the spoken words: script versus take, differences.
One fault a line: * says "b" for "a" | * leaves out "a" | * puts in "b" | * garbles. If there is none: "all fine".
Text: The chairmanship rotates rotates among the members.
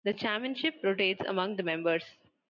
* leaves out "rotates"